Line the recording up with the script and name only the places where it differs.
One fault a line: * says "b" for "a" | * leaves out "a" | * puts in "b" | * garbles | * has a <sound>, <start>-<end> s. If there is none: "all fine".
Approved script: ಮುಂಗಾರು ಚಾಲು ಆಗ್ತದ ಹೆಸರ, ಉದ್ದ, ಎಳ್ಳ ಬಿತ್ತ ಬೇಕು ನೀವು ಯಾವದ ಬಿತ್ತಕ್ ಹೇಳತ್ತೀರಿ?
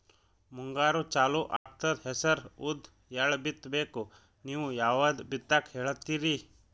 * has a dropout, 1.6-1.7 s